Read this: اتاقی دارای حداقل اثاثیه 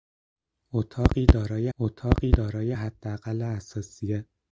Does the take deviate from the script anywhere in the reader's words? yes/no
yes